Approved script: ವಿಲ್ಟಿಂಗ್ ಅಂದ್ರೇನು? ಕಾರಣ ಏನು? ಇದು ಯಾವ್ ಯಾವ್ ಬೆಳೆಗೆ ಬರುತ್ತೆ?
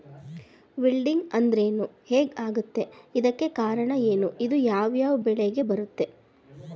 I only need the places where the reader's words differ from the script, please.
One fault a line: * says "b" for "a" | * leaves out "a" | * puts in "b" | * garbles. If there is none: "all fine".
* puts in "ಹೆಗ್ ಆಗತ್ತೆ ಇದಕ್ಕೆ"